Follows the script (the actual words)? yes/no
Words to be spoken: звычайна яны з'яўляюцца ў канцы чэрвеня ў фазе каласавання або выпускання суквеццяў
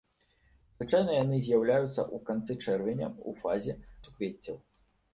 no